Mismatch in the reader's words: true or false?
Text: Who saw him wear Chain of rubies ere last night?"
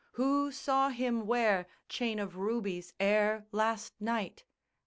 false